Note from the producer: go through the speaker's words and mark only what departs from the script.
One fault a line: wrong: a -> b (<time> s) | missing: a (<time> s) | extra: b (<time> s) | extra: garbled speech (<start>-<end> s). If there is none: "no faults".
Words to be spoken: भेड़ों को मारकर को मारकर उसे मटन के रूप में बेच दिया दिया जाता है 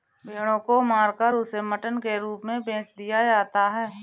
missing: को मारकर (1.4 s)
missing: दिया (3.2 s)